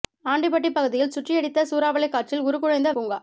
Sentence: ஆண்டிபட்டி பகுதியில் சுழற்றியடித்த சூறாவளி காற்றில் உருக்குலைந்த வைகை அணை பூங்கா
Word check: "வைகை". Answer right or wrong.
wrong